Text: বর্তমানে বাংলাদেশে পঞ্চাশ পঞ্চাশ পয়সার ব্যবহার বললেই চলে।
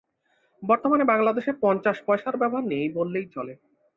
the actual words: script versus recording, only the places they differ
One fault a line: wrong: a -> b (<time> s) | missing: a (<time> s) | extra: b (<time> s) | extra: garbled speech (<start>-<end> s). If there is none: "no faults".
missing: পঞ্চাশ (2.0 s)
extra: নেই (2.7 s)